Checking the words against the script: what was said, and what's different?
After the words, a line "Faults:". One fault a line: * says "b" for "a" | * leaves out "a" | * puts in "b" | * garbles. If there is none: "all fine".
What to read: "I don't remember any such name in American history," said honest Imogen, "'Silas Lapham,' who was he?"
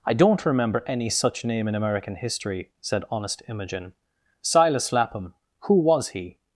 "I don't remember any such name in American history," said honest Imogen, "'Silas Lapham,' who was he?"
Faults:
all fine